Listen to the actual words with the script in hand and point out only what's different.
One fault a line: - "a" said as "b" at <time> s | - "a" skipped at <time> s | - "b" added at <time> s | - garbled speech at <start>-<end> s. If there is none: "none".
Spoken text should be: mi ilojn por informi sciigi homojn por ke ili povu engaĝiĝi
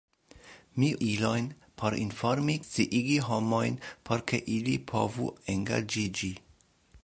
none